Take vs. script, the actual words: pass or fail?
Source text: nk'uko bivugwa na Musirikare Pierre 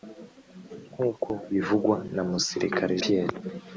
pass